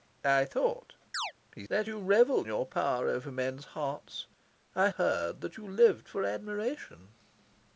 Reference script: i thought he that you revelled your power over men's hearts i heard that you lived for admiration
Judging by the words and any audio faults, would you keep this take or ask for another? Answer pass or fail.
fail